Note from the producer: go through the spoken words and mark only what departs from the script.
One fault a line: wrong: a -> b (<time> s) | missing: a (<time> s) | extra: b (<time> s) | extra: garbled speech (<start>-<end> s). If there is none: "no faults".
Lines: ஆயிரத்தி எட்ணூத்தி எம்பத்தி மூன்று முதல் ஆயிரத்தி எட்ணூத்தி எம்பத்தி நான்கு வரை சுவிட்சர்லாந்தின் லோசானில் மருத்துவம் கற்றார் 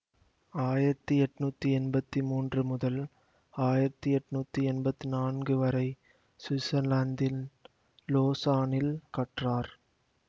missing: மருத்துவம் (8.9 s)